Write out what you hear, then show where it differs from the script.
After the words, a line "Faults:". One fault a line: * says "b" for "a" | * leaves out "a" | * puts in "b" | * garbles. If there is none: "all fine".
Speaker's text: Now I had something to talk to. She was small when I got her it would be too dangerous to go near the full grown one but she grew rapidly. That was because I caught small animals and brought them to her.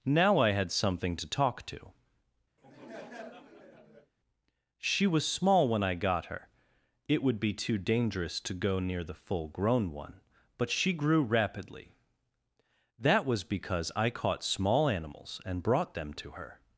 Now I had something to talk to. She was small when I got her it would be too dangerous to go near the full grown one but she grew rapidly. That was because I caught small animals and brought them to her.
Faults:
all fine